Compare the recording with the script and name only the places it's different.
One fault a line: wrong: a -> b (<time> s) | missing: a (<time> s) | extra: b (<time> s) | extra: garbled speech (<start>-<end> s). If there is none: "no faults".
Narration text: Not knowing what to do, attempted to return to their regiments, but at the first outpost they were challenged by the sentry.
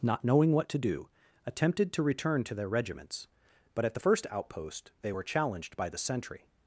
no faults